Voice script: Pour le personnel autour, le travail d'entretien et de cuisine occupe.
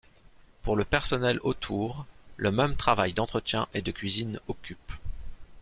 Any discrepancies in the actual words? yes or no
yes